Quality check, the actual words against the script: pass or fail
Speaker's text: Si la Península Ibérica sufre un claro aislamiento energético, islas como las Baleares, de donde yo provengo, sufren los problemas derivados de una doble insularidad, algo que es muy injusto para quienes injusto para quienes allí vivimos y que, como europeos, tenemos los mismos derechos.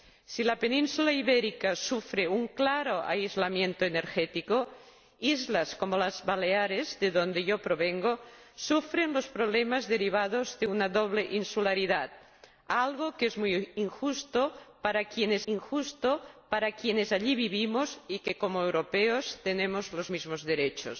pass